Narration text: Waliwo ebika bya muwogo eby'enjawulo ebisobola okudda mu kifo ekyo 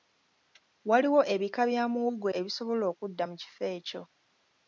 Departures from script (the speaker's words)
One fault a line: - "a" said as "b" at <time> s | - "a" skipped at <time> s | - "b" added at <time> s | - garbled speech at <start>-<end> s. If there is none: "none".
- "eby'enjawulo" skipped at 2.3 s